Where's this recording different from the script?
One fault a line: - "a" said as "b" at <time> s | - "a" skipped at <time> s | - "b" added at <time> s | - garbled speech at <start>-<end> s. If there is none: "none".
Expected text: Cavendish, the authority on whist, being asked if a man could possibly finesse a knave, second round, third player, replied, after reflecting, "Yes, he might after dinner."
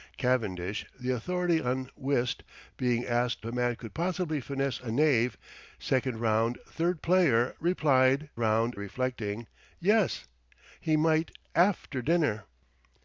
- "if" skipped at 3.5 s
- "after" said as "round" at 8.4 s